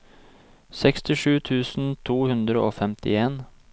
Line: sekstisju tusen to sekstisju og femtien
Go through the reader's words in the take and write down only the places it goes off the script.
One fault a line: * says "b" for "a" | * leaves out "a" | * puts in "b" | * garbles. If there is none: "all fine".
* says "hundre" for "sekstisju"